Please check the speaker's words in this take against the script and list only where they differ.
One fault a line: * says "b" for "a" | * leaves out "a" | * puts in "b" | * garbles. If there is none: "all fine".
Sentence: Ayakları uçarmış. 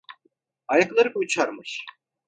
all fine